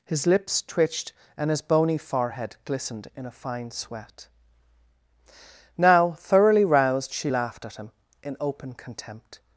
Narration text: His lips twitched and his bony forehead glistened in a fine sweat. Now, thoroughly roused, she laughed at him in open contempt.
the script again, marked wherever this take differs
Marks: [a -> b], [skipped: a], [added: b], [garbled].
His lips twitched and his bony forehead glistened in a fine sweat. Now, thoroughly roused, she laughed at him in open contempt.